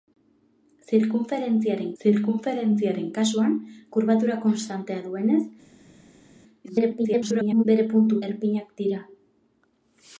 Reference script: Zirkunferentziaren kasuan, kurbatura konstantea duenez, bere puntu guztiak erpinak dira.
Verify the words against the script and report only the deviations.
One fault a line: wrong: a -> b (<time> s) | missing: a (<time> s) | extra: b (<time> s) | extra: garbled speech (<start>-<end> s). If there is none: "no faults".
extra: zirkunferentziaren (2.0 s)
extra: garbled speech (6.6-7.6 s)
missing: guztiak (8.2 s)